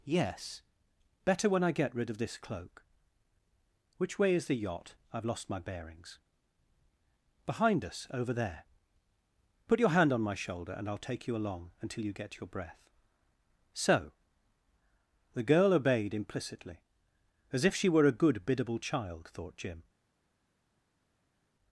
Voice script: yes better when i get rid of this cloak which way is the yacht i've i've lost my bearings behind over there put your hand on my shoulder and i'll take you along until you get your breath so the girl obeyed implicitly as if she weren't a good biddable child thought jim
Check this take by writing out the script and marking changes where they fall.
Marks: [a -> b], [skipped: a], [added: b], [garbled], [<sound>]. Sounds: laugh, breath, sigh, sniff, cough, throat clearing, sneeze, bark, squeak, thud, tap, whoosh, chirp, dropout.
yes better when i get rid of this cloak which way is the yacht i've [skipped: i've] lost my bearings behind [added: us] over there put your hand on my shoulder and i'll take you along until you get your breath so the girl obeyed implicitly as if she [weren't -> were] a good biddable child thought jim